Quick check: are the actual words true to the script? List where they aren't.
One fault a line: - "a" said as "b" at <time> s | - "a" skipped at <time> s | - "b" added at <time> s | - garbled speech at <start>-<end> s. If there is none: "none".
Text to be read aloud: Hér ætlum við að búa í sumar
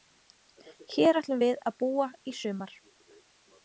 none